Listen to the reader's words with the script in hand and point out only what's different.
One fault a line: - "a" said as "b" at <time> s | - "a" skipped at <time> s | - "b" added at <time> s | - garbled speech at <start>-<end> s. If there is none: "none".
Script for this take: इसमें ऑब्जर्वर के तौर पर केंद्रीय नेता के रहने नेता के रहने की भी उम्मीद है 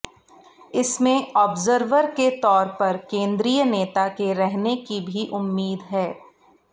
- "नेता के रहने" skipped at 4.8 s